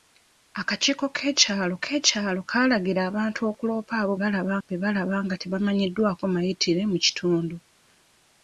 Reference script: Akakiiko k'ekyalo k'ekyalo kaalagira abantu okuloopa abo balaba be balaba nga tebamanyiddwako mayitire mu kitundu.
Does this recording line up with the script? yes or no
yes